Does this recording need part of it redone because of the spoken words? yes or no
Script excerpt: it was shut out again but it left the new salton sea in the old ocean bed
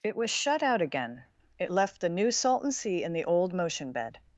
yes